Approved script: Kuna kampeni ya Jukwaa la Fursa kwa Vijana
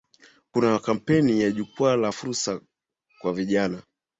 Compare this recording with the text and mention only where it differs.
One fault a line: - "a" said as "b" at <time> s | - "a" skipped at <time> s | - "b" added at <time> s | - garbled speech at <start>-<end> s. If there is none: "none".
none